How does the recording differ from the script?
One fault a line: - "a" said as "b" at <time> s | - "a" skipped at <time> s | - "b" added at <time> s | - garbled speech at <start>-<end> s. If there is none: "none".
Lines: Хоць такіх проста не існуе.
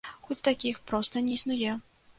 none